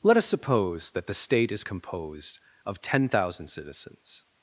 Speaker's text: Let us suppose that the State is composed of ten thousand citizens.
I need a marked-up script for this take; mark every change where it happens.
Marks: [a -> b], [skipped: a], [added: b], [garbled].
Let us suppose that the State is composed of ten thousand citizens.